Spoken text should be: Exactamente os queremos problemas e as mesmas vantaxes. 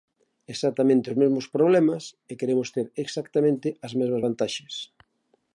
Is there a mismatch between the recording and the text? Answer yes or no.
yes